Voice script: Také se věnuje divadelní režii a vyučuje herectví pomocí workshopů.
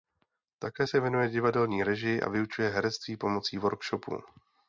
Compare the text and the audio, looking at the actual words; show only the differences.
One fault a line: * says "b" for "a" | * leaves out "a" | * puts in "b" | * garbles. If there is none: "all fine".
all fine